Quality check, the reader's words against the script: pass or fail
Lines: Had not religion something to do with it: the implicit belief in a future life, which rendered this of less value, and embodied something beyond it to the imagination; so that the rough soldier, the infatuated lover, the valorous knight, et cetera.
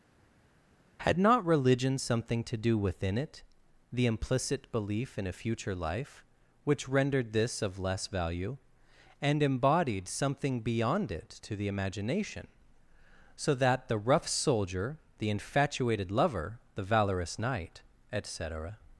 fail